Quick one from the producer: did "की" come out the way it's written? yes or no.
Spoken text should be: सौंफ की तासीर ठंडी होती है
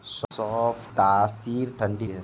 no